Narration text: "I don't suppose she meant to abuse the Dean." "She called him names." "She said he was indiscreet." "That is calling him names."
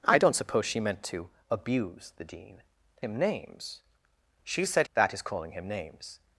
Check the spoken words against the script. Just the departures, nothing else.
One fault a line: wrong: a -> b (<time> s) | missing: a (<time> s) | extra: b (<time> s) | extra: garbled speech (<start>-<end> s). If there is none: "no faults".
missing: She called (2.6 s)
missing: he was indiscreet (4.9 s)